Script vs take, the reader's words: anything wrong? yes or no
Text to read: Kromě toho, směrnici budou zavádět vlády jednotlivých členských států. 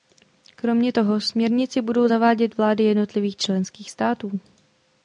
no